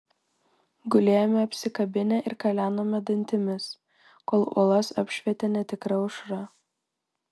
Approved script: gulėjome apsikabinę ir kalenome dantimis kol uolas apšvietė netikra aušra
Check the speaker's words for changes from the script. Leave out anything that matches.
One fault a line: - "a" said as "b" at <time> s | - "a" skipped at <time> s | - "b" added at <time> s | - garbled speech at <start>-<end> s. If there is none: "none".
none